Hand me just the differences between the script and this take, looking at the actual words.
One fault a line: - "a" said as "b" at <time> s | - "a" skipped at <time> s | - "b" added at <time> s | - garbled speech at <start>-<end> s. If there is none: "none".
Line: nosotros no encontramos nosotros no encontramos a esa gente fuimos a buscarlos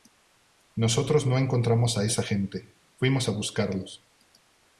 - "nosotros no encontramos" skipped at 1.9 s